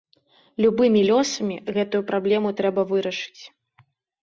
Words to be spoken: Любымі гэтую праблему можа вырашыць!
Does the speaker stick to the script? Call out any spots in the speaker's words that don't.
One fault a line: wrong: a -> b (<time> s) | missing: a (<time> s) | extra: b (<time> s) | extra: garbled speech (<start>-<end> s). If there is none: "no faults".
extra: лёсамі (1.1 s)
wrong: можа -> трэба (2.6 s)